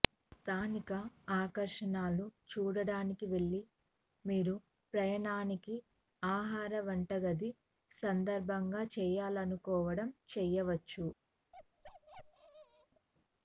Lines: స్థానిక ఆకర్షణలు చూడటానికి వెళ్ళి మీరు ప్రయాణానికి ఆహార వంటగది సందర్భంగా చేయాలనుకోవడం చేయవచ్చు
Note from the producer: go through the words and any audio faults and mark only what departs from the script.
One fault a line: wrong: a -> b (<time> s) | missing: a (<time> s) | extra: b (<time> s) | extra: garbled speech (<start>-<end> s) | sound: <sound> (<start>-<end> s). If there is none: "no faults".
sound: bark (11.5-13.1 s)